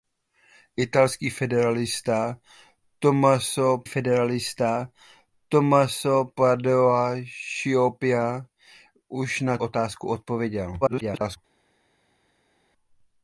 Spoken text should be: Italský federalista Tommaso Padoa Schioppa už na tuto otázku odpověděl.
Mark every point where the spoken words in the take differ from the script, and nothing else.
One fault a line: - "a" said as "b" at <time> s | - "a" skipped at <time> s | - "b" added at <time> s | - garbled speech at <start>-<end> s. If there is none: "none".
- "federalista Tommaso" added at 3.8 s
- "tuto" skipped at 9.6 s
- garbled speech at 10.8-11.4 s